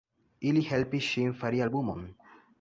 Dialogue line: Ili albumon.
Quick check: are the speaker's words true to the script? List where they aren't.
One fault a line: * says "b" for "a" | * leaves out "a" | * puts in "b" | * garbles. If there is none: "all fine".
* puts in "helpis ŝin fari"